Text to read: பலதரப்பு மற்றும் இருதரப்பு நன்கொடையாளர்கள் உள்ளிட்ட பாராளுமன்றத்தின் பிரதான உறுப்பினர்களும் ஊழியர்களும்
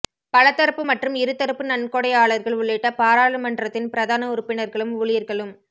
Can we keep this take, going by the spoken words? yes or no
yes